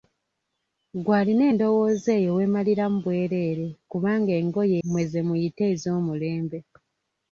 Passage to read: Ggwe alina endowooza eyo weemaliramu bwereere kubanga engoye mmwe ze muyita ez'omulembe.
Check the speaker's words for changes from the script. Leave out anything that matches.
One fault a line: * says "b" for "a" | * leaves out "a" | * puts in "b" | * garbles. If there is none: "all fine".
all fine